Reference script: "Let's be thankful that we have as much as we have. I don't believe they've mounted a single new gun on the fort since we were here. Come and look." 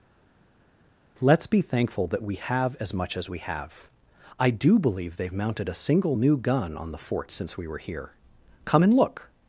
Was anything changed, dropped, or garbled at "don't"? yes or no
yes